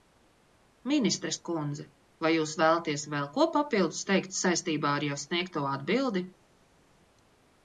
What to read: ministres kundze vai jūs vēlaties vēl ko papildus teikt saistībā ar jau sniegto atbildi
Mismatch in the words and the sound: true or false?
false